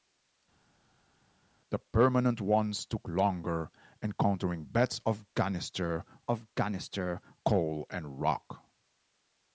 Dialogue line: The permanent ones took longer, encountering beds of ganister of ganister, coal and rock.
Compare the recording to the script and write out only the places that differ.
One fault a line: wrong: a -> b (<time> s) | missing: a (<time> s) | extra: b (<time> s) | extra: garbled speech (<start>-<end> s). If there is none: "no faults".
no faults